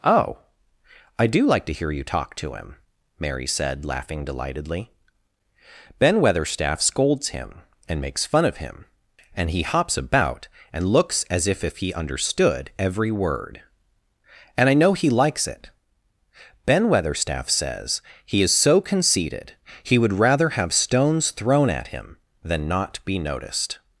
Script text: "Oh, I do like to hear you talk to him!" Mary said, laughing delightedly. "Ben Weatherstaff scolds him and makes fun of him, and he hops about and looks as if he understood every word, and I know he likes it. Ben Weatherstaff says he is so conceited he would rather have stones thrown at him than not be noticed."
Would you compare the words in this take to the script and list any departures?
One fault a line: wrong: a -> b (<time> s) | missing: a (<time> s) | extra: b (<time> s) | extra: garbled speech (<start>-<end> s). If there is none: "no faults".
extra: if (11.6 s)